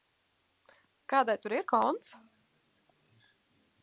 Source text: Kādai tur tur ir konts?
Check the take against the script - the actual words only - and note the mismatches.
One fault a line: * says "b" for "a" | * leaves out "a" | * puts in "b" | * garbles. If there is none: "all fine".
* leaves out "tur"